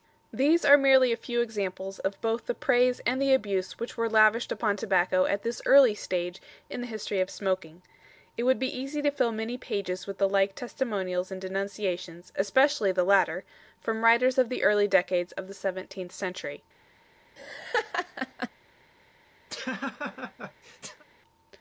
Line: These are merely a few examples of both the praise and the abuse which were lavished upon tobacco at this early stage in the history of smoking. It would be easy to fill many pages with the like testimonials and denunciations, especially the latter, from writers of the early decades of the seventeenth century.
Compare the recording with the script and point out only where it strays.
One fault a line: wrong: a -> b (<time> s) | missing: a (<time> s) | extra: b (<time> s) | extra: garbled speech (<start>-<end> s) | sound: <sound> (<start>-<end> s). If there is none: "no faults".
sound: laugh (17.4-18.5 s)
sound: laugh (19.5-21.0 s)